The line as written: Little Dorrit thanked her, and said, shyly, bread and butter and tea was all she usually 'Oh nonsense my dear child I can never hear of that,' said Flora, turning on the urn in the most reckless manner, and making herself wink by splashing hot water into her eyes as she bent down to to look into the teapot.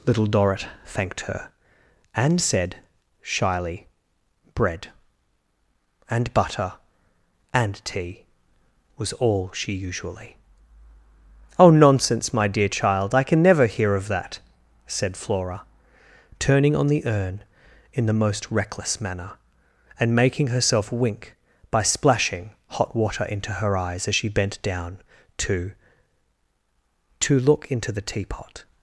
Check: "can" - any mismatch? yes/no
no